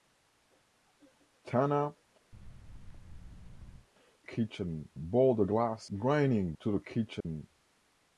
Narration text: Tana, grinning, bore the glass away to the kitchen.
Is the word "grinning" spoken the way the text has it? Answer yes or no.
no